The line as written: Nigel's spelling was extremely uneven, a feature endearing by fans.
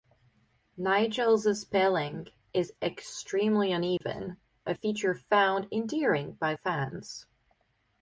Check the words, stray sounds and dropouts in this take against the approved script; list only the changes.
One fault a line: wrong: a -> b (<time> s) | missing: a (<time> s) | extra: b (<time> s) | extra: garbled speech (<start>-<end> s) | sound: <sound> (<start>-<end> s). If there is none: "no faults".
wrong: was -> is (2.5 s)
sound: dropout (4.0-4.0 s)
extra: found (5.1 s)